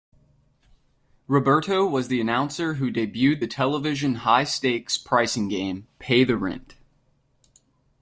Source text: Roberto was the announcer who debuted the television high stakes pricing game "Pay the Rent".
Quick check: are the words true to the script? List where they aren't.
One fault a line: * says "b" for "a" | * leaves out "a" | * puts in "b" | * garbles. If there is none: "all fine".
all fine